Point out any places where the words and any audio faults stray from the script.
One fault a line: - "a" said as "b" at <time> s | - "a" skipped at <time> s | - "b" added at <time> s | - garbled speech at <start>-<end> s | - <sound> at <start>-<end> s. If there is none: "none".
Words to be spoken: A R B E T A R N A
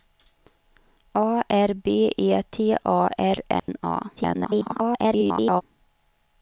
- dropout at 3.6-3.7 s
- garbled speech at 4.2-5.6 s